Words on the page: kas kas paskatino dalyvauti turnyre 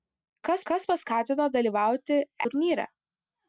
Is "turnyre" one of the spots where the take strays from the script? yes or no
no